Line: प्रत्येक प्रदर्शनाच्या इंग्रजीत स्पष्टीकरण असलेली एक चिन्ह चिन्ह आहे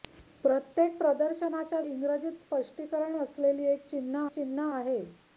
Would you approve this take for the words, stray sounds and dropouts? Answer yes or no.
yes